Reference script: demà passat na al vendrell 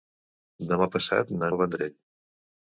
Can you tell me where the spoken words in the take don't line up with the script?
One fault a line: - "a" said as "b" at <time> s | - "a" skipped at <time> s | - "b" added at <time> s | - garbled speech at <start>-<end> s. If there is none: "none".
none